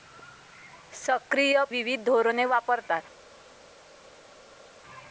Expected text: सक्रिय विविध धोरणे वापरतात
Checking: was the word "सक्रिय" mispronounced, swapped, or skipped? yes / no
no